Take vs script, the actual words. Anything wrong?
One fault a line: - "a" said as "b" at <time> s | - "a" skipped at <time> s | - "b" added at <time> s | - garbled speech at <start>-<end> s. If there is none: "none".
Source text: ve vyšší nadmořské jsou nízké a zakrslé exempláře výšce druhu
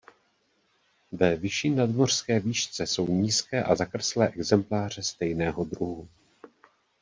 - "výšce" added at 2.4 s
- "výšce" said as "stejného" at 5.0 s